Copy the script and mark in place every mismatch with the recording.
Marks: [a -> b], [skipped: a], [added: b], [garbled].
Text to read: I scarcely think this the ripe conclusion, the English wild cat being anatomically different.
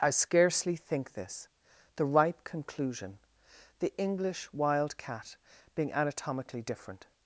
I scarcely think this the ripe conclusion, the English wild cat being anatomically different.